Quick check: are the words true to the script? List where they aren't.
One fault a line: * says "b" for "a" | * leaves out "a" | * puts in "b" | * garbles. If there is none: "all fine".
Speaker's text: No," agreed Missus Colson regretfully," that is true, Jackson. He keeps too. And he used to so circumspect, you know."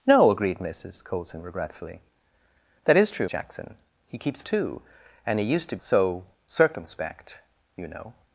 all fine